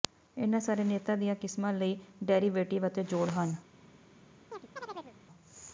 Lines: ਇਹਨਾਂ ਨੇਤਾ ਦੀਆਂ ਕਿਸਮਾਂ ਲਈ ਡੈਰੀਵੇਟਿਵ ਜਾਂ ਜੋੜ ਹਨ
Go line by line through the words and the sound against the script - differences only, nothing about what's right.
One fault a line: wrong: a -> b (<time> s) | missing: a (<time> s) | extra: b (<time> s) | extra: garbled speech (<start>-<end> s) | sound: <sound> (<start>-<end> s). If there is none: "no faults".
extra: ਸਾਰੇ (0.6 s)
wrong: ਜਾਂ -> ਅਤੇ (2.9 s)
sound: chirp (4.5-5.2 s)